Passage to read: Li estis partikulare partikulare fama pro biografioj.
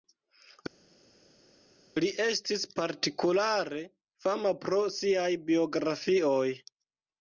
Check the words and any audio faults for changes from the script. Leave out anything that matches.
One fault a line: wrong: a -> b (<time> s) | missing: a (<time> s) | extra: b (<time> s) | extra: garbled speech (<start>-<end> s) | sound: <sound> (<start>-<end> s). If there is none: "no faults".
missing: partikulare (3.8 s)
extra: siaj (5.0 s)